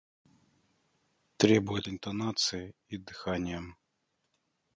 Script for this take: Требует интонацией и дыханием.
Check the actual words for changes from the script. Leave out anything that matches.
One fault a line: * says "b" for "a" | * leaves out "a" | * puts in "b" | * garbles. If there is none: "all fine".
all fine